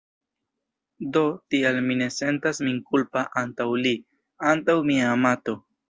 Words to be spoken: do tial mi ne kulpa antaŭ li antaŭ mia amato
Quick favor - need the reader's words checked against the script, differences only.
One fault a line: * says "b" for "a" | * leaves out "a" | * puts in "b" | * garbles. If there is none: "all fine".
* puts in "sentas min"